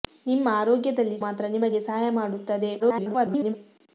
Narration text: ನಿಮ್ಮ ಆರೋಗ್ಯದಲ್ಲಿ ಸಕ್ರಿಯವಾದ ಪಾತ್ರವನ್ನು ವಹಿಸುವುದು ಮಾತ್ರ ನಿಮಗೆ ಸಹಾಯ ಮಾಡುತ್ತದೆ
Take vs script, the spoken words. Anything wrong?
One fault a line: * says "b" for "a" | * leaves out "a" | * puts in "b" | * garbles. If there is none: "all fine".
* leaves out "ಸಕ್ರಿಯವಾದ ಪಾತ್ರವನ್ನು ವಹಿಸುವುದು"
* garbles